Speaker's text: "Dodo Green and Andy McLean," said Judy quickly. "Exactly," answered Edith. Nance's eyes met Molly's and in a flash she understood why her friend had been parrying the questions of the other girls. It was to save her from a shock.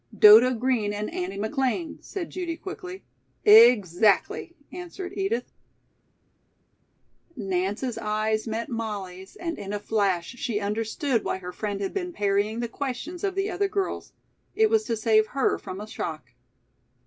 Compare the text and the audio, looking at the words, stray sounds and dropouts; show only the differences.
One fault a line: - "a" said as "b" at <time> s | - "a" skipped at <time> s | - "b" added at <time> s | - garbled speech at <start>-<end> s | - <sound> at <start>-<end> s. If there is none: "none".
none